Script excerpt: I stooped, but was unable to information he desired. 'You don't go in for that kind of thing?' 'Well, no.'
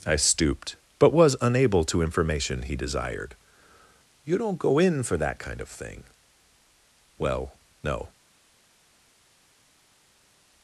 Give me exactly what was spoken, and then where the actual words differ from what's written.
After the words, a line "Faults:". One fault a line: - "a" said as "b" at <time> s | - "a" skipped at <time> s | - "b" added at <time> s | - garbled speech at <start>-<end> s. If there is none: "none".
I stooped, but was unable to information he desired. 'You don't go in for that kind of thing?' 'Well, no.'
Faults:
none